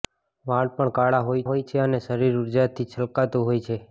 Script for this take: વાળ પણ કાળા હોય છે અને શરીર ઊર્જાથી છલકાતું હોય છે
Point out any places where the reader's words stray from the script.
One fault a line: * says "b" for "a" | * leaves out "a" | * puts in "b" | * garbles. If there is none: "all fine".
* puts in "હોય"